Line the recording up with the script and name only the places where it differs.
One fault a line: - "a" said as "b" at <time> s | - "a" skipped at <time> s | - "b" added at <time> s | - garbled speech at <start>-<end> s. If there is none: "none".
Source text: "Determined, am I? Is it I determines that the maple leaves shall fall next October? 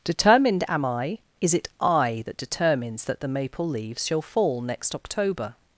- "that" added at 2.2 s